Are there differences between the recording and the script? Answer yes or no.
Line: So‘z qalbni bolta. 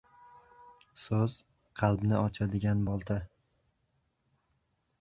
yes